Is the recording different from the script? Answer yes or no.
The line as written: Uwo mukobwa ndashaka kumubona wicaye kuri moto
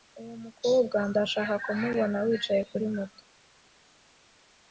no